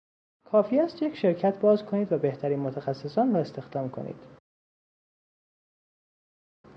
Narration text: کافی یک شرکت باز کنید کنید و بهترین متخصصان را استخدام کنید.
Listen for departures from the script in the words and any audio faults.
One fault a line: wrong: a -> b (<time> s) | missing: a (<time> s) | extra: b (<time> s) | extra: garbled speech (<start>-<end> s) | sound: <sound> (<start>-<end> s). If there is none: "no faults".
extra: است (0.8 s)
missing: کنید (2.1 s)